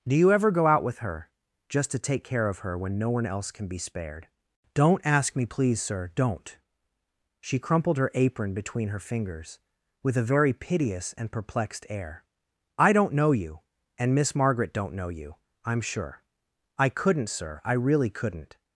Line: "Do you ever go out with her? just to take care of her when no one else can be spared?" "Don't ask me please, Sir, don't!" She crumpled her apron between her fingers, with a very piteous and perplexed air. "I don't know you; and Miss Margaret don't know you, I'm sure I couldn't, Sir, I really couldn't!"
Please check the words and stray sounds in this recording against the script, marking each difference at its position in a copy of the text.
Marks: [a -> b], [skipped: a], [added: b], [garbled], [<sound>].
"Do you ever go out with her? just to take care of her when no one else can be spared?" "Don't ask me please, Sir, don't!" She crumpled her apron between her fingers, with a very piteous and perplexed air. "I don't know you; and Miss Margaret don't know you, I'm sure I couldn't, Sir, I really couldn't!"